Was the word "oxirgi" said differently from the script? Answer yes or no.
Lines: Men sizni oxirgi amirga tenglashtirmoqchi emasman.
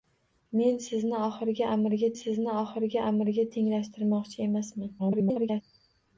no